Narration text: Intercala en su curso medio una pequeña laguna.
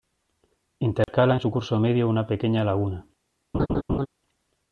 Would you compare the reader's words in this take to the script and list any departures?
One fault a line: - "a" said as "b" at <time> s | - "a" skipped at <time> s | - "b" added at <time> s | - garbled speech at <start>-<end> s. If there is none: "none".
none